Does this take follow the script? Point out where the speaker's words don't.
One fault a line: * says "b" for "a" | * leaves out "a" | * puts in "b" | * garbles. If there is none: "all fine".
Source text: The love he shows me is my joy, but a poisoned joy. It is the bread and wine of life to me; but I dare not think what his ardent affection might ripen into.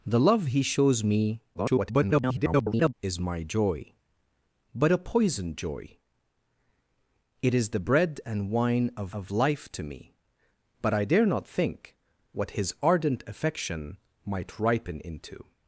* garbles
* puts in "of"